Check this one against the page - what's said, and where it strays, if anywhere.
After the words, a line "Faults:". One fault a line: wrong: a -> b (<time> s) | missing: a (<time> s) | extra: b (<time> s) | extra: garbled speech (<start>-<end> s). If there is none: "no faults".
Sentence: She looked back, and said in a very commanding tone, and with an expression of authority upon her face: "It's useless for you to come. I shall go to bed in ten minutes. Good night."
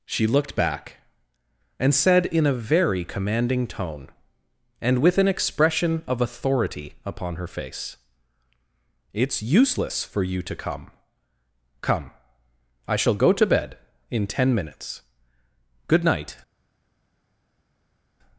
She looked back, and said in a very commanding tone, and with an expression of authority upon her face: "It's useless for you to come come. I shall go to bed in ten minutes. Good night."
Faults:
extra: come (11.8 s)